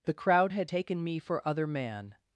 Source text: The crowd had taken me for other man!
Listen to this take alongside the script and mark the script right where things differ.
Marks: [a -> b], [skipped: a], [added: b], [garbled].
The crowd had taken me for other man!